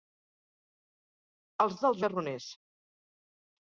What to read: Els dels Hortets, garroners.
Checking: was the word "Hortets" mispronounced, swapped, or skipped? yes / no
yes